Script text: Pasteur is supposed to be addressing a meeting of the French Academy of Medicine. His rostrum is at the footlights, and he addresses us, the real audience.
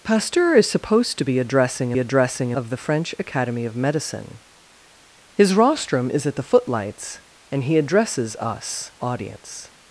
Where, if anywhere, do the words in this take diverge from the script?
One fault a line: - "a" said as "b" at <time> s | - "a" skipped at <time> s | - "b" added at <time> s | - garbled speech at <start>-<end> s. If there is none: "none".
- "meeting" said as "addressing" at 2.0 s
- "the real" skipped at 8.9 s